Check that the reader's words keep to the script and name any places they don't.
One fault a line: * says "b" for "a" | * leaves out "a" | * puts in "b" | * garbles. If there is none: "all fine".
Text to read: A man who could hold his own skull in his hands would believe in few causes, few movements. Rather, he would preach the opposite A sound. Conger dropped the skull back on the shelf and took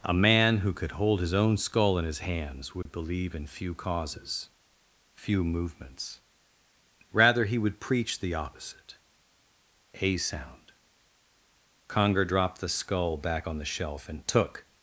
all fine